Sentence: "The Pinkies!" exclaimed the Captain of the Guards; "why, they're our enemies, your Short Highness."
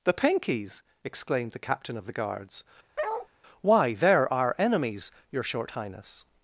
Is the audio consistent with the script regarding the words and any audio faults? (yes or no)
no